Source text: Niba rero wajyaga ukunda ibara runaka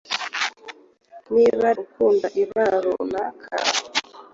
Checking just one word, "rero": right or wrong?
wrong